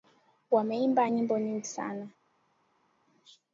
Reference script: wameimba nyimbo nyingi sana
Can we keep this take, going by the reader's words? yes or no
yes